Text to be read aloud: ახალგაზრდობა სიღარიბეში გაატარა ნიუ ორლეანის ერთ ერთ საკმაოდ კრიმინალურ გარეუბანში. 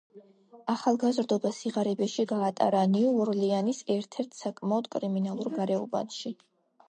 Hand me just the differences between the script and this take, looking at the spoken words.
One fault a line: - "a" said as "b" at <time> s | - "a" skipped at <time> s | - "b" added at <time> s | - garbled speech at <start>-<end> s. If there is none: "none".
none